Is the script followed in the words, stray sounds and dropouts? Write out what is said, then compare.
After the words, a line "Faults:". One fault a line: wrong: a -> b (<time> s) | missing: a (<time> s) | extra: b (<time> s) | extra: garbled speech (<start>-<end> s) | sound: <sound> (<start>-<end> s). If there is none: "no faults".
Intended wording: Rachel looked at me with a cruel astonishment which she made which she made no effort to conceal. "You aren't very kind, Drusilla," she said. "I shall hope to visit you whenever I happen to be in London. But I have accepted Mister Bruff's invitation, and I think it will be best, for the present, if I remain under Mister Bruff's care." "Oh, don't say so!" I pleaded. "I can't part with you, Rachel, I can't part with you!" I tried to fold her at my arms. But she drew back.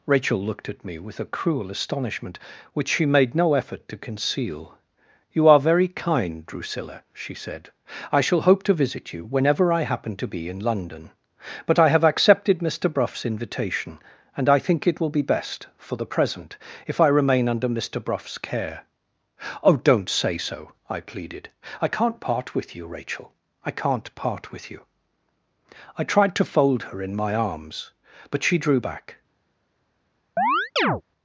Rachel looked at me with a cruel astonishment which she made no effort to conceal. "You are very kind, Drusilla," she said. "I shall hope to visit you whenever I happen to be in London. But I have accepted Mister Bruff's invitation, and I think it will be best, for the present, if I remain under Mister Bruff's care." "Oh, don't say so!" I pleaded. "I can't part with you, Rachel, I can't part with you!" I tried to fold her in my arms. But she drew back.
Faults:
missing: which she made (3.4 s)
wrong: aren't -> are (5.5 s)
wrong: at -> in (27.0 s)
sound: chirp (30.4-31.0 s)